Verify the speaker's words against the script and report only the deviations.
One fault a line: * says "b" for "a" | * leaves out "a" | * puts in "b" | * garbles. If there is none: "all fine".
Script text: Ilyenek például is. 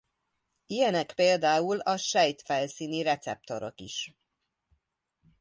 * puts in "a sejtfelszíni receptorok"